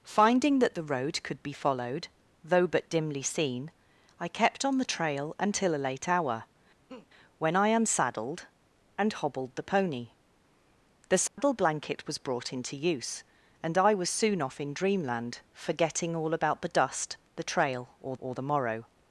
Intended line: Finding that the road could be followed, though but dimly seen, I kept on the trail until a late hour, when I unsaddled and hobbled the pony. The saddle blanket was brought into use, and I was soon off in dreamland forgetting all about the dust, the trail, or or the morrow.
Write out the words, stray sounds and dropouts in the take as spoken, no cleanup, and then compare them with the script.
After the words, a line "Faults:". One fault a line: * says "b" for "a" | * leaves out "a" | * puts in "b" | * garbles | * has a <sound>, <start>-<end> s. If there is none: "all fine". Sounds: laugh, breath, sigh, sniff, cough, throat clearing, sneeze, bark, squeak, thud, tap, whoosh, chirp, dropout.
Finding that the road could be followed, though but dimly seen, I kept on the trail until a late hour, when I unsaddled and hobbled the pony. The saddle blanket was brought into use, and I was soon off in dreamland forgetting all about the dust, the trail, or or the morrow.
Faults:
* has a laugh, 6.9-7.1 s
* has a dropout, 11.3-11.4 s